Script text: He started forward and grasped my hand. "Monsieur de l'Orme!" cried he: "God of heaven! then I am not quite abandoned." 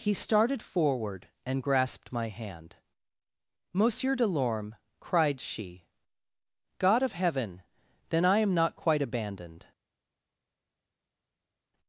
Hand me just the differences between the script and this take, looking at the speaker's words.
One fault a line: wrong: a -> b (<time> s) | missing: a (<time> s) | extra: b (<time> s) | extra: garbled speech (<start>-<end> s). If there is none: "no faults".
wrong: he -> she (5.4 s)